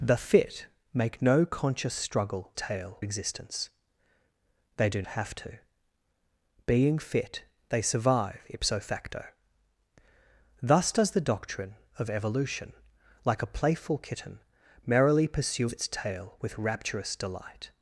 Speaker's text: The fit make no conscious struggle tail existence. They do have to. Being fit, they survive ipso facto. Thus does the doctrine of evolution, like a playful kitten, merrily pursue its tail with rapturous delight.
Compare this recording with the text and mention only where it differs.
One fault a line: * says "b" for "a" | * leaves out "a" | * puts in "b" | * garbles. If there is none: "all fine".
all fine